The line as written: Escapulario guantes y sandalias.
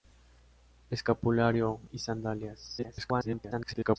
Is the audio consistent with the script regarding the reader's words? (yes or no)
no